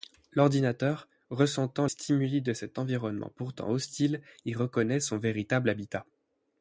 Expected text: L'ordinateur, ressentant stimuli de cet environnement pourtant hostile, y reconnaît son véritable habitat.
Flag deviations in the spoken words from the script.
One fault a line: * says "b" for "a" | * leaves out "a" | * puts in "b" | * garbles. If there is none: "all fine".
all fine